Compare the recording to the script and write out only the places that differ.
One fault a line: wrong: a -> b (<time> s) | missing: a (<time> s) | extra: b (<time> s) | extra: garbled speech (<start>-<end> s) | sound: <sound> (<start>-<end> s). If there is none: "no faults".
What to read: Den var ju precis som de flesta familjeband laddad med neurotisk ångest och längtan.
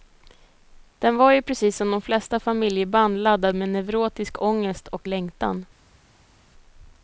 no faults